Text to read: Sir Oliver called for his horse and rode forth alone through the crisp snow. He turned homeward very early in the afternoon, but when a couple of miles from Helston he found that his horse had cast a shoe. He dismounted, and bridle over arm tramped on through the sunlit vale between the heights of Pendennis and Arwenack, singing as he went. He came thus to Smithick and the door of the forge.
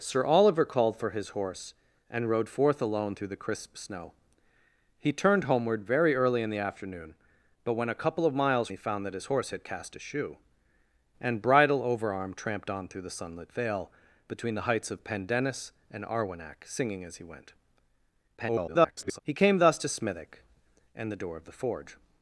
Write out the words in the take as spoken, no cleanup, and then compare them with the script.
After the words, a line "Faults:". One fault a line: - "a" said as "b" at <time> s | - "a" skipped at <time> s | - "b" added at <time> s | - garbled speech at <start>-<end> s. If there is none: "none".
Sir Oliver called for his horse and rode forth alone through the crisp snow. He turned homeward very early in the afternoon, but when a couple of miles he found that his horse had cast a shoe. And bridle over arm tramped on through the sunlit vale between the heights of Pendennis and Arwenack, singing as he went. [garbled] He came thus to Smithick and the door of the forge.
Faults:
- "from Helston" skipped at 8.7 s
- "He dismounted" skipped at 10.4 s
- garbled speech at 18.4-19.2 s